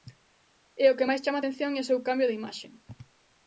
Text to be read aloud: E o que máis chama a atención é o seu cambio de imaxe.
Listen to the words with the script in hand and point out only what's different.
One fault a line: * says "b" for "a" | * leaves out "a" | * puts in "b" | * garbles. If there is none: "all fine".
all fine